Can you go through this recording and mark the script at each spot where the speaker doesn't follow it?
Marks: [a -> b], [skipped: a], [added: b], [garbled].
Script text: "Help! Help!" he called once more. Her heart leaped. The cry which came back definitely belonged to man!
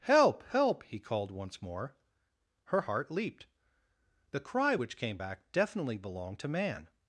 "Help! Help!" he called once more. Her heart leaped. The cry which came back definitely belonged to man!